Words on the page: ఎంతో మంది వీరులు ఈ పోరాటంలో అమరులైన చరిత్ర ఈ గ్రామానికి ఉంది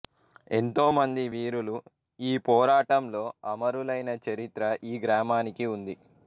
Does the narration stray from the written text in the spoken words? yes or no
no